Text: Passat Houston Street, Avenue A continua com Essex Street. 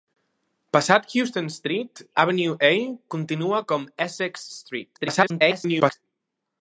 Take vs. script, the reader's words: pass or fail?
fail